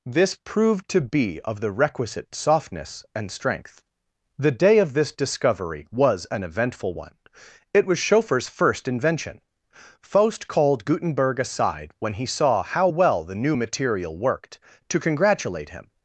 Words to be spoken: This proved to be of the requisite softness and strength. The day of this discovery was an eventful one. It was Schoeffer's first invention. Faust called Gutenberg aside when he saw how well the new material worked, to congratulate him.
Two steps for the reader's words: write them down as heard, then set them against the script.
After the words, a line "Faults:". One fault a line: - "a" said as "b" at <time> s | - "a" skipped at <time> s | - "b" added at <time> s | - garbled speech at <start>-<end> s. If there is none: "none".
This proved to be of the requisite softness and strength. The day of this discovery was an eventful one. It was Schoeffer's first invention. Faust called Gutenberg aside when he saw how well the new material worked, to congratulate him.
Faults:
none